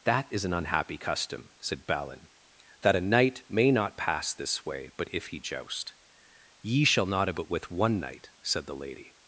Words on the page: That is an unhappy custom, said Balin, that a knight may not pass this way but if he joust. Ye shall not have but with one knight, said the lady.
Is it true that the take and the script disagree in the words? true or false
false